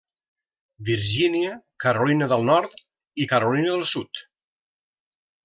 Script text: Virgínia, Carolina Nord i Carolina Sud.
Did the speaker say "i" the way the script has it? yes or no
yes